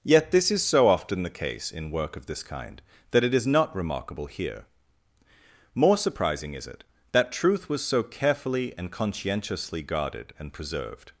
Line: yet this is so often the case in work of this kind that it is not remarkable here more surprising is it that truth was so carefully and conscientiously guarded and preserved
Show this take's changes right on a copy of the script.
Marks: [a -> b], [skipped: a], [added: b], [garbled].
yet this is so often the case in work of this kind that it is not remarkable here more surprising is it that truth was so carefully and conscientiously guarded and preserved